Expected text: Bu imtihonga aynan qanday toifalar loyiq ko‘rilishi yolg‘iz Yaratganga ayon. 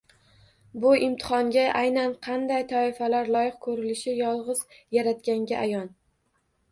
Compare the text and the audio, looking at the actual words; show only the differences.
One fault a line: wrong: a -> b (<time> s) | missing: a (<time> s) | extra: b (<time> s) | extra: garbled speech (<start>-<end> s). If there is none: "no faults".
no faults